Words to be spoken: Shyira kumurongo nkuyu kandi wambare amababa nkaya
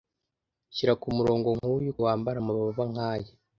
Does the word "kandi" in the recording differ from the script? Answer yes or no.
yes